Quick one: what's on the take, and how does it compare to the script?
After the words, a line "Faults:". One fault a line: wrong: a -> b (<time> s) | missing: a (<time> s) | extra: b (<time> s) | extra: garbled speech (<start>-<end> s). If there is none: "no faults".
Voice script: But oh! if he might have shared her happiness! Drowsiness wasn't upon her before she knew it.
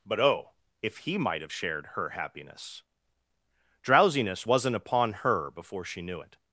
But oh! if he might have shared her happiness! Drowsiness wasn't upon her before she knew it.
Faults:
no faults